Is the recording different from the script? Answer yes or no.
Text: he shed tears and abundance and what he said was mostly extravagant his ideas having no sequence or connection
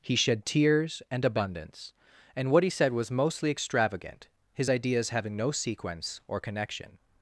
no